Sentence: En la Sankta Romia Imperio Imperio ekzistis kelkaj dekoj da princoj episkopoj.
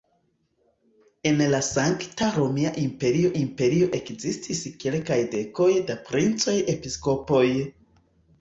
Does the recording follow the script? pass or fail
pass